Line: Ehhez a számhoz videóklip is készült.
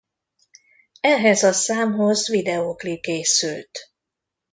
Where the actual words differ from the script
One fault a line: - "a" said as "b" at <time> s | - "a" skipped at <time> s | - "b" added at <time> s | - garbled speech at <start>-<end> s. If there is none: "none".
- "is" skipped at 3.1 s